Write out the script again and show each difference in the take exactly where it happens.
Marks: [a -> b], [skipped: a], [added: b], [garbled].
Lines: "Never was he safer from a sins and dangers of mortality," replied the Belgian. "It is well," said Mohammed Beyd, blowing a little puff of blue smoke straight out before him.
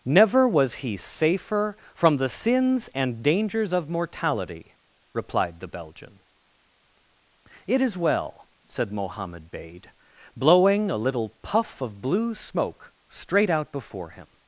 "Never was he safer from [a -> the] sins and dangers of mortality," replied the Belgian. "It is well," said Mohammed Beyd, blowing a little puff of blue smoke straight out before him.